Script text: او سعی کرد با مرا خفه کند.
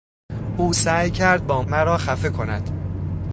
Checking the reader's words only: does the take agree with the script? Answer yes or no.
yes